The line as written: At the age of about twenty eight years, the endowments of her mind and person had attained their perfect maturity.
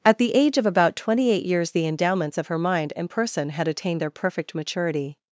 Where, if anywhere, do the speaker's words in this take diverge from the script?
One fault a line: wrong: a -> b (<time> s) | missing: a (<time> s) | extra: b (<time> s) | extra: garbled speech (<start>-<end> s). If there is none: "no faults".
no faults